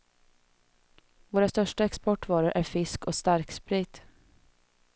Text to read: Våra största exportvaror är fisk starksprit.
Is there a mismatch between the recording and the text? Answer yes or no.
yes